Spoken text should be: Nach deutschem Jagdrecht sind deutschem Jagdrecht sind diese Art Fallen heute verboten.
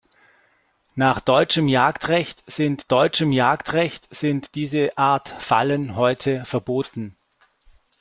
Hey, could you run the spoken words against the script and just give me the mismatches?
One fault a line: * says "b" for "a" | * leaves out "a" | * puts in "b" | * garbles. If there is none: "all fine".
all fine